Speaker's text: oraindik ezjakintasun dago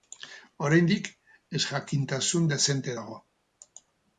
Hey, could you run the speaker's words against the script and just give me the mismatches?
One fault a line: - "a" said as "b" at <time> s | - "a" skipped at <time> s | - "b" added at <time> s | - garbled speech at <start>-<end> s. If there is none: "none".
- "dezente" added at 2.5 s